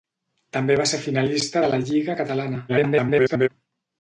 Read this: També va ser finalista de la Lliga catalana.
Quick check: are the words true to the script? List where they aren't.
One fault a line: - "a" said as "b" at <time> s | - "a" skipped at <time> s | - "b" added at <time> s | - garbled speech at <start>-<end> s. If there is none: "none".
- garbled speech at 2.7-3.5 s